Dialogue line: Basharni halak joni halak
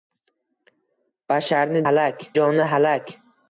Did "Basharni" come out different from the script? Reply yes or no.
no